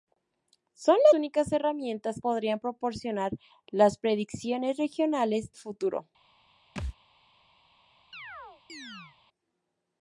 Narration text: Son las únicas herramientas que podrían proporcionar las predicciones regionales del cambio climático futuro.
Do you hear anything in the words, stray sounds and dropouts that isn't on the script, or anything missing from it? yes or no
yes